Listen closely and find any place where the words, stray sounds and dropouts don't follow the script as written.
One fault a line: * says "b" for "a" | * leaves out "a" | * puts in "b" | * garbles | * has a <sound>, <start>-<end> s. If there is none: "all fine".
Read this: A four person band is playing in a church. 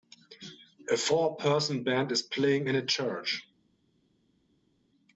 all fine